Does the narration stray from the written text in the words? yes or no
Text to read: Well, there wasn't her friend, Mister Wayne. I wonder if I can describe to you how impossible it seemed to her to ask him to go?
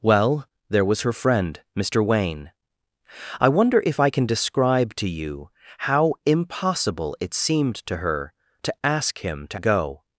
yes